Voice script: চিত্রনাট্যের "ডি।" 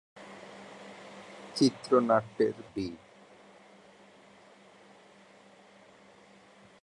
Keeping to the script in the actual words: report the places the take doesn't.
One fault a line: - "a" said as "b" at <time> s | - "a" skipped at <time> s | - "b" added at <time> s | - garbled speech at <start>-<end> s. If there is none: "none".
none